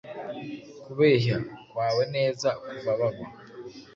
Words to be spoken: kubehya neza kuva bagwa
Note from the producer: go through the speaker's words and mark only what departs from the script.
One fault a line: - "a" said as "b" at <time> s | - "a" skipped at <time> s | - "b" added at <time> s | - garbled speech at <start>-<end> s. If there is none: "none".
- "kwawe" added at 1.7 s